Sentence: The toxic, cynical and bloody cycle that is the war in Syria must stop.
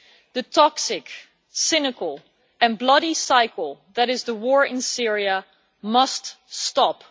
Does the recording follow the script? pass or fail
pass